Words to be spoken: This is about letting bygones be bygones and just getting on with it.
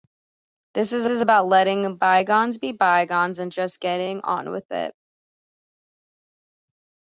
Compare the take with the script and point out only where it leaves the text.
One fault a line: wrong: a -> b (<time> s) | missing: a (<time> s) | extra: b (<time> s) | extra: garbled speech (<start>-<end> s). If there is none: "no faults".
extra: is (1.1 s)